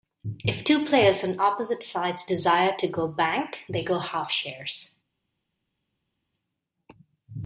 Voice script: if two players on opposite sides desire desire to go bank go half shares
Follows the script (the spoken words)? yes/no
no